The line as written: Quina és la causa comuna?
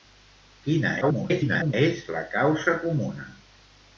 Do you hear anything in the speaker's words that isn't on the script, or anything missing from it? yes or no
yes